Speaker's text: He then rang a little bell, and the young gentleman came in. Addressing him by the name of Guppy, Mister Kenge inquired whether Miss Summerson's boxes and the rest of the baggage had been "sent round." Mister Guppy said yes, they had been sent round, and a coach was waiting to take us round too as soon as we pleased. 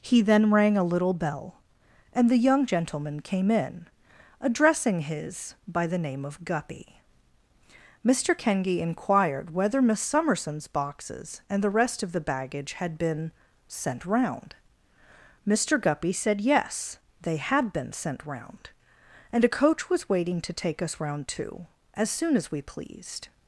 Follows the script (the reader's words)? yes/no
no